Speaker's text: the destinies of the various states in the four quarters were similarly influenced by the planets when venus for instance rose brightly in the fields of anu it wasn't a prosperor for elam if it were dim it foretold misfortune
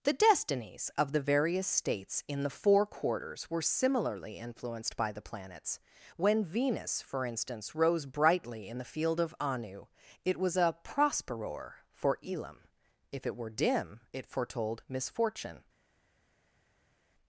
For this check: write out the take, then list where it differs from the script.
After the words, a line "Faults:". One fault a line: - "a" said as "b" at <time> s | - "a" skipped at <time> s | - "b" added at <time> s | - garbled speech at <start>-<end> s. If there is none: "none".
the destinies of the various states in the four quarters were similarly influenced by the planets when venus for instance rose brightly in the field of anu it was a prosperor for elam if it were dim it foretold misfortune
Faults:
- "fields" said as "field" at 8.9 s
- "wasn't" said as "was" at 10.4 s